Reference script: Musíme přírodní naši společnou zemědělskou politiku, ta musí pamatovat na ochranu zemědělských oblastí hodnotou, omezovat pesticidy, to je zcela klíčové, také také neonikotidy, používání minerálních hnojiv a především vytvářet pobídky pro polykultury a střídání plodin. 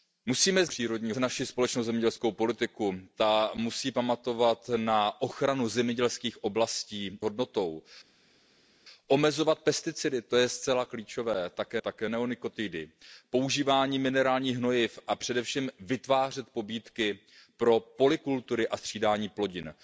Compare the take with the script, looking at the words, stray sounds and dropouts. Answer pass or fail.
pass